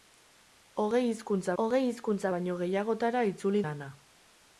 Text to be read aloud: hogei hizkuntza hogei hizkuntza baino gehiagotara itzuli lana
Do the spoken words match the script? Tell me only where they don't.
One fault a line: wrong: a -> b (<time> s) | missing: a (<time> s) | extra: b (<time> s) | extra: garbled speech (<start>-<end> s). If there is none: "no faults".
no faults